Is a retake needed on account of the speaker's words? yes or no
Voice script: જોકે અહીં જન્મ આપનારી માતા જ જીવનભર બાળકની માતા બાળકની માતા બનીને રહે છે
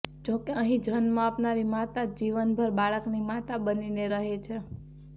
yes